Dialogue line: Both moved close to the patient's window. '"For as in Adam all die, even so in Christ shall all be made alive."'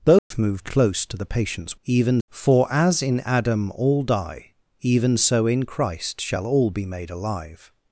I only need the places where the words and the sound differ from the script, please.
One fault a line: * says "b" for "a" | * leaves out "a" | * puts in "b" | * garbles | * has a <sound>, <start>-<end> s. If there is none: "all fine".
* has a dropout, 0.2-0.3 s
* says "even" for "window"